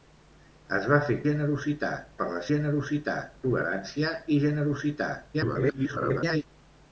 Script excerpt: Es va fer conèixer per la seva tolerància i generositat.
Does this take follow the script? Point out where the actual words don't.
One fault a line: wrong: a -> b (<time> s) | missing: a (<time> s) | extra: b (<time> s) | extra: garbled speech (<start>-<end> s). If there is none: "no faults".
wrong: conèixer -> generositat (1.3 s)
wrong: seva -> generositat (2.5 s)
extra: garbled speech (5.3-6.4 s)